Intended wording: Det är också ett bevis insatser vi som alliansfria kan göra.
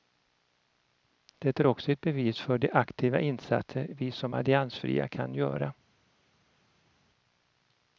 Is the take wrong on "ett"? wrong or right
right